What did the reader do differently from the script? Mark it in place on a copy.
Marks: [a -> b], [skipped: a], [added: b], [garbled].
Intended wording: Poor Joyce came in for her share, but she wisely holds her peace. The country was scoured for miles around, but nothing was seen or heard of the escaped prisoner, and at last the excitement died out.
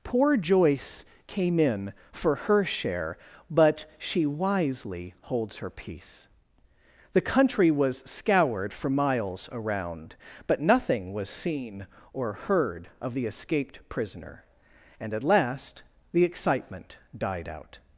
Poor Joyce came in for her share, but she wisely holds her peace. The country was scoured for miles around, but nothing was seen or heard of the escaped prisoner, and at last the excitement died out.